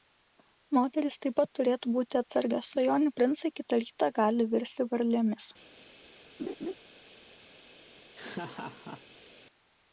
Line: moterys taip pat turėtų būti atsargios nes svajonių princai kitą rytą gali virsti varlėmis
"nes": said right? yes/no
no